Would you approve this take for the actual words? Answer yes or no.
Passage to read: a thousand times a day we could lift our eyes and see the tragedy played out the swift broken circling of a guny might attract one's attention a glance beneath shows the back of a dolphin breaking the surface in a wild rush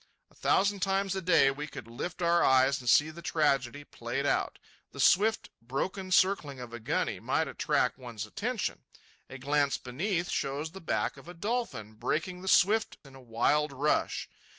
no